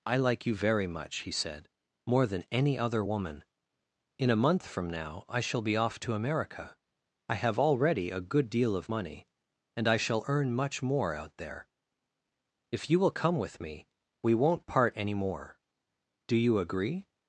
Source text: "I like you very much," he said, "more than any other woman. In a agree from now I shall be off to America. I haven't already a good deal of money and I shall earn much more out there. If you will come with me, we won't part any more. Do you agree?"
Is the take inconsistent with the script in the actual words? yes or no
yes